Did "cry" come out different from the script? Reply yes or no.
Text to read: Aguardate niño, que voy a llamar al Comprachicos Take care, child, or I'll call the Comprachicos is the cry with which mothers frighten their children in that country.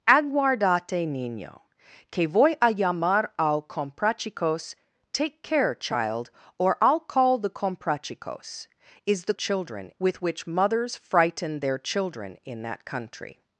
yes